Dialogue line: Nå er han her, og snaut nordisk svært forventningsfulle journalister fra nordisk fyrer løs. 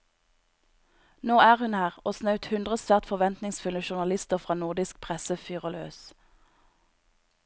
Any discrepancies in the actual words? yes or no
yes